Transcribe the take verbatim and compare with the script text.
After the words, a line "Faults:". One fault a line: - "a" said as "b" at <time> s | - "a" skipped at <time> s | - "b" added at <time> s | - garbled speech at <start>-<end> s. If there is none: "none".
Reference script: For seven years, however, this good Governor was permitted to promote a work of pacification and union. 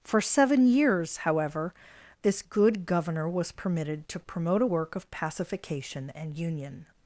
For seven years, however, this good Governor was permitted to promote a work of pacification and union.
Faults:
none